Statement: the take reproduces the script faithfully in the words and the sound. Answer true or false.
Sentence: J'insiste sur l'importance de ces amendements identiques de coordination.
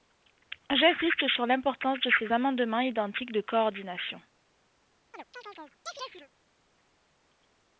false